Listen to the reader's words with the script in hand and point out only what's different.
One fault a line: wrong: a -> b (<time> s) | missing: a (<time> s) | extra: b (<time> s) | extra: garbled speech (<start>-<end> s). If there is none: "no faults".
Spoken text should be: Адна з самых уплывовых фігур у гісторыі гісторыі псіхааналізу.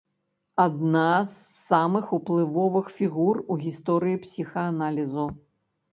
missing: гісторыі (4.2 s)